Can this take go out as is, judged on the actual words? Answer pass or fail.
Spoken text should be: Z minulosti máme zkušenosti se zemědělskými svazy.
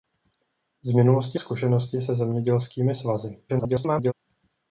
fail